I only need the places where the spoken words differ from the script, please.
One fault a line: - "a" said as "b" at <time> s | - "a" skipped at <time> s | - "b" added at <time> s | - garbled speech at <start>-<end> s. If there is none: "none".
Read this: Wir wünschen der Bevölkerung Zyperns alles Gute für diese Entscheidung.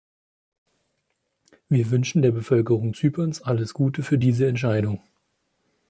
none